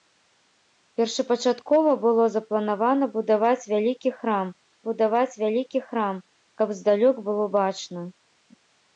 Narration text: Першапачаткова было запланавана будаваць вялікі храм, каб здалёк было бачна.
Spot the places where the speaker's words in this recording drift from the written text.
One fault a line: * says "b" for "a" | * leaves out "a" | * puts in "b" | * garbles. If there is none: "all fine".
* puts in "будаваць вялікі храм"